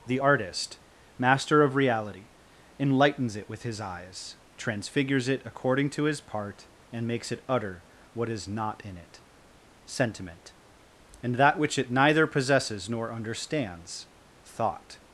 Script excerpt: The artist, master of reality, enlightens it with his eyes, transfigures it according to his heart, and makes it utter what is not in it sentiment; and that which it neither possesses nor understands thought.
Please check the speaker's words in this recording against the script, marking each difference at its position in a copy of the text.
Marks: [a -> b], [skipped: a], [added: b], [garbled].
The artist, master of reality, enlightens it with his eyes, transfigures it according to his [heart, -> part] and makes it utter what is not in it sentiment; and that which it neither possesses nor understands thought.